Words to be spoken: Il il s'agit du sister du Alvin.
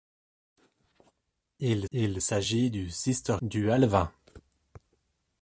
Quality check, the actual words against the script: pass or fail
pass